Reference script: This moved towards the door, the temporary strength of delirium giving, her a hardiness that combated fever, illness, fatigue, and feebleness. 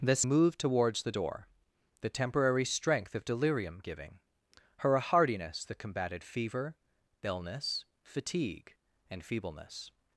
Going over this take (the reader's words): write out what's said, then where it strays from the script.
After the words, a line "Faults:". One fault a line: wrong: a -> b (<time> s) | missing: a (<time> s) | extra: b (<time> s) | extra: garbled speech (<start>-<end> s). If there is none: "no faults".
This moved towards the door, the temporary strength of delirium giving, her a hardiness that combated fever, illness, fatigue, and feebleness.
Faults:
no faults